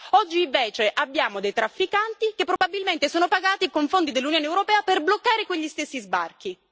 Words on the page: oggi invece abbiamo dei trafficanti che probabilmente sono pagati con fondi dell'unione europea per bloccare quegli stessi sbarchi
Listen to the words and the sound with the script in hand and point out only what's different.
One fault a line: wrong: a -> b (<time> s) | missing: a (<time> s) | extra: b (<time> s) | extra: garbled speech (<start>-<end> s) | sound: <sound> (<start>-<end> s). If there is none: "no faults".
sound: dropout (2.6-2.6 s)